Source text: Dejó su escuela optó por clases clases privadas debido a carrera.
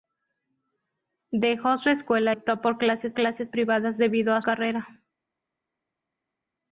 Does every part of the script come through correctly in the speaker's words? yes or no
yes